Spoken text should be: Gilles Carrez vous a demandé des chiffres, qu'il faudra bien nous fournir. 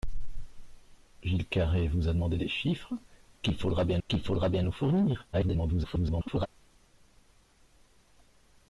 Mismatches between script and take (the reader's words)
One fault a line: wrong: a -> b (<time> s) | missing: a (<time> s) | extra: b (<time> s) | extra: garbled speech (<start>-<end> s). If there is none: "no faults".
extra: qu'il faudra bien (4.1 s)
extra: garbled speech (5.3-6.5 s)